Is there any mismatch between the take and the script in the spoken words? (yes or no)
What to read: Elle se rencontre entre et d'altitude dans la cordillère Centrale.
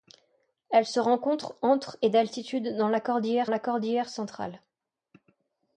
yes